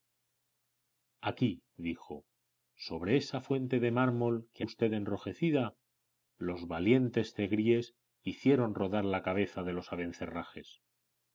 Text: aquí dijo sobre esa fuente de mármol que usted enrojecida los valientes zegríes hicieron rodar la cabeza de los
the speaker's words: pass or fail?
pass